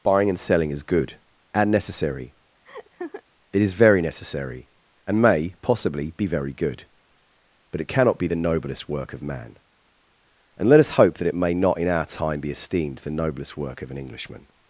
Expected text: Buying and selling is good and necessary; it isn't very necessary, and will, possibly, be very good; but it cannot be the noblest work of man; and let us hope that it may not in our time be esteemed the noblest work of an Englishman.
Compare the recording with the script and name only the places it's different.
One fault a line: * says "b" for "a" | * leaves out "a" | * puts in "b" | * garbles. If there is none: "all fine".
* says "is" for "isn't"
* says "may" for "will"